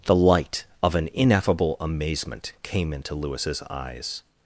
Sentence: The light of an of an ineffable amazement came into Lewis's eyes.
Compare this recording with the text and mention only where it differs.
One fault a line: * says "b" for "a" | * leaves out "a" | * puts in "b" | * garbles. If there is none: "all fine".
* leaves out "of an"